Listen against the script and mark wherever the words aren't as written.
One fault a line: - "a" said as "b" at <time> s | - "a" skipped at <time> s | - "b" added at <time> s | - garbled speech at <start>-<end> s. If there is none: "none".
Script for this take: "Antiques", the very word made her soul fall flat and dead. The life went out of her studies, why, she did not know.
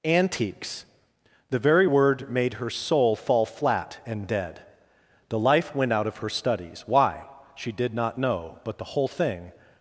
- "But the whole thing" added at 8.6 s